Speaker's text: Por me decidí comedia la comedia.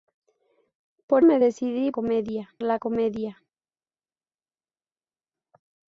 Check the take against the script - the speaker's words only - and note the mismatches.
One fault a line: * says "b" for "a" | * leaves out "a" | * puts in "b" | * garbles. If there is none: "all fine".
all fine